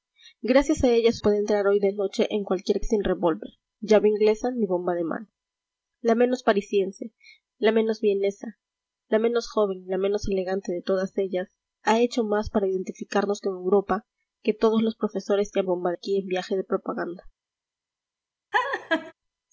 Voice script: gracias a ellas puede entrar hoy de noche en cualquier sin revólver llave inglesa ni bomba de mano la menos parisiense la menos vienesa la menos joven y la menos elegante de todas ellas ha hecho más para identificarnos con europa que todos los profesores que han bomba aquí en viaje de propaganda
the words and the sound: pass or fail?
fail